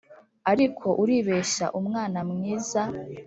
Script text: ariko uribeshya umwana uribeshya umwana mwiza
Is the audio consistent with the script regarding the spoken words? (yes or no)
no